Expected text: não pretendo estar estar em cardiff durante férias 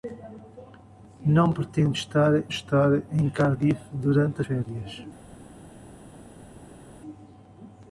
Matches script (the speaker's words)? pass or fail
pass